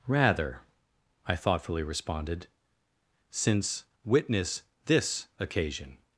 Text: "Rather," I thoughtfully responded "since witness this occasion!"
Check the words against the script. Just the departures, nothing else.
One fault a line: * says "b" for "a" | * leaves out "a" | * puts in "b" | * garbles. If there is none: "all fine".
all fine